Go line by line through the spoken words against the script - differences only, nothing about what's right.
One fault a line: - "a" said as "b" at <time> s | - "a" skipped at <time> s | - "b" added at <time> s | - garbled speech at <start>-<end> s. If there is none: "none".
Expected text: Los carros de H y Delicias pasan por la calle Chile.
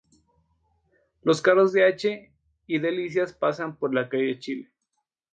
none